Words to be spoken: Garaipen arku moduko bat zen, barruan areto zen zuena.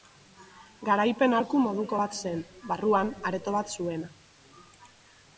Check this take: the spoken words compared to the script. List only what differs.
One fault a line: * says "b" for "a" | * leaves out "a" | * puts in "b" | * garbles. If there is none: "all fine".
* says "bat" for "zen"